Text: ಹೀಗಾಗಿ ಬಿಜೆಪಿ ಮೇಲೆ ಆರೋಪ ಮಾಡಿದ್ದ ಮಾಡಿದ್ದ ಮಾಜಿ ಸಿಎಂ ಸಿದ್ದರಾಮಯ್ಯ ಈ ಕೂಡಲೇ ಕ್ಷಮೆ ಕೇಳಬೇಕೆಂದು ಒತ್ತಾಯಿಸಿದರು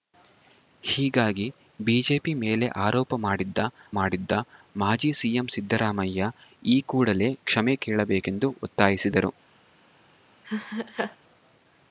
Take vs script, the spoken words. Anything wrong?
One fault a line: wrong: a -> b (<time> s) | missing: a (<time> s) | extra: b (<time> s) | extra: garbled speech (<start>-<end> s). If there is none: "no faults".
no faults